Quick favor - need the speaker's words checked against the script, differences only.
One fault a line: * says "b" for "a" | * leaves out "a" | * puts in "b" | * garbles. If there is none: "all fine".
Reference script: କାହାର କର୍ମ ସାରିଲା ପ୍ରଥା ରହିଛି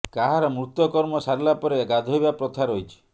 * puts in "ମୃତ"
* puts in "ପରେ ଗାଧୋଇବା"